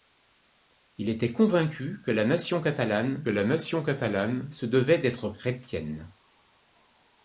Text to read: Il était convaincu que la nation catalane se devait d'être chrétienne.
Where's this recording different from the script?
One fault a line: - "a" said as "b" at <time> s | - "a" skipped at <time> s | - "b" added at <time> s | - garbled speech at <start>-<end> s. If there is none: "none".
- "la nation catalane" added at 3.3 s